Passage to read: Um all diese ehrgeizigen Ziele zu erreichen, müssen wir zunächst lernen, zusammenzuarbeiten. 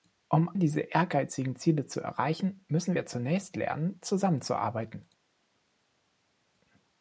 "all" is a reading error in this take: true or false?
true